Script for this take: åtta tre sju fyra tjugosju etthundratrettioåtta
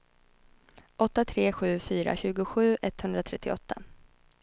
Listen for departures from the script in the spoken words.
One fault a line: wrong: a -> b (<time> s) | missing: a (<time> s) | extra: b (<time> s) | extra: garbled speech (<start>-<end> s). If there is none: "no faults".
no faults